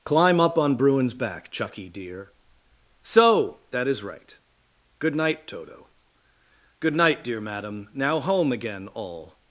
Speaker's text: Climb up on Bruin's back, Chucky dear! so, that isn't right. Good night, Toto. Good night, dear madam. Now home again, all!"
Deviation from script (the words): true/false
true